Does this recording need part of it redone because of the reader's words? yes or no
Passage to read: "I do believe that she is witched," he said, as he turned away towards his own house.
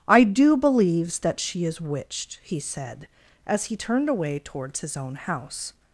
yes